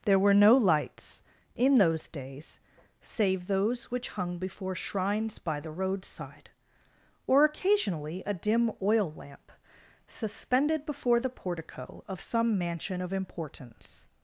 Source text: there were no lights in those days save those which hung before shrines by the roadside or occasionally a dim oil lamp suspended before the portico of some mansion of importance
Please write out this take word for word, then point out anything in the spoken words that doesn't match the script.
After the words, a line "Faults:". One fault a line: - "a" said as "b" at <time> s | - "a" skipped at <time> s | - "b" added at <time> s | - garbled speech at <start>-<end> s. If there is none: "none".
there were no lights in those days save those which hung before shrines by the roadside or occasionally a dim oil lamp suspended before the portico of some mansion of importance
Faults:
none